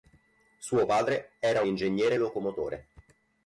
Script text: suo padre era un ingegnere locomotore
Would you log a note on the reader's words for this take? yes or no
no